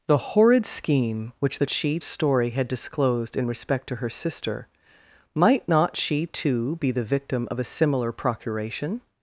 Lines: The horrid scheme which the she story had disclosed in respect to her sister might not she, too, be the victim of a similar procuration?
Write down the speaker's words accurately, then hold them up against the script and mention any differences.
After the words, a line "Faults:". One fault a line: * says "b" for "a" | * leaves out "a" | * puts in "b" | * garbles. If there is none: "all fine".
The horrid scheme which the she story had disclosed in respect to her sister might not she, too, be the victim of a similar procuration?
Faults:
all fine